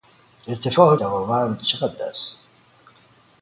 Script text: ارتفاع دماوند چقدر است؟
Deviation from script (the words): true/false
false